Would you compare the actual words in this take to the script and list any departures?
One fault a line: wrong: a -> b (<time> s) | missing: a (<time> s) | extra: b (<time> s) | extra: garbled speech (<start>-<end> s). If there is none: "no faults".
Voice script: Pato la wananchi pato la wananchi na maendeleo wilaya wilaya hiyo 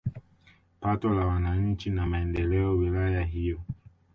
missing: pato la wananchi (1.9 s)
missing: wilaya (3.2 s)